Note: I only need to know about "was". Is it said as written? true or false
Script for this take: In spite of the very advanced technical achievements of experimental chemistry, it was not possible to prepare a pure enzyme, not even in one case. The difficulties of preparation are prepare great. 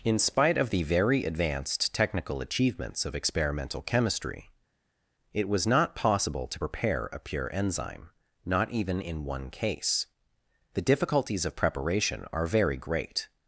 true